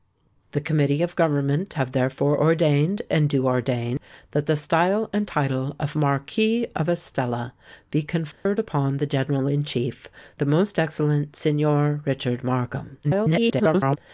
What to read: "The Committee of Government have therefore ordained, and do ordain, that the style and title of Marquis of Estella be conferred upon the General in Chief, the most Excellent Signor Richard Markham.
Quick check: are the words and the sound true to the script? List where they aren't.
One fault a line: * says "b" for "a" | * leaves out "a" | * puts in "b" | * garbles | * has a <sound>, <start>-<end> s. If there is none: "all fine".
* has a dropout, 8.3-8.5 s
* garbles